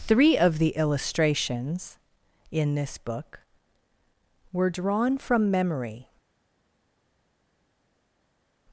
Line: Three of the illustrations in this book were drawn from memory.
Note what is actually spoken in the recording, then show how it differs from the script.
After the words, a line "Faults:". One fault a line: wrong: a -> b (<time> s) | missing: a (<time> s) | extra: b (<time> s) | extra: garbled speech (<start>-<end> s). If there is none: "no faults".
Three of the illustrations in this book were drawn from memory.
Faults:
no faults